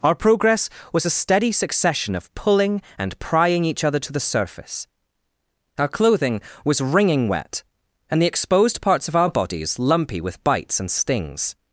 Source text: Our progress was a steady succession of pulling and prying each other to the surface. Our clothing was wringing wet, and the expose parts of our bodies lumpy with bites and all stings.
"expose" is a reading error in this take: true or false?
true